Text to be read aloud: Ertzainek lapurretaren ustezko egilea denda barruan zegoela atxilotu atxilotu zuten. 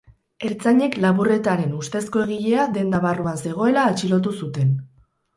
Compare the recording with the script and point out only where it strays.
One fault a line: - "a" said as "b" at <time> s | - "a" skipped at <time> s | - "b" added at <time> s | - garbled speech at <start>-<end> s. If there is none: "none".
- "atxilotu" skipped at 4.3 s